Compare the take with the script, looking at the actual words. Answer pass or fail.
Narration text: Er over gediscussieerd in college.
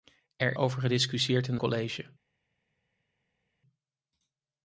pass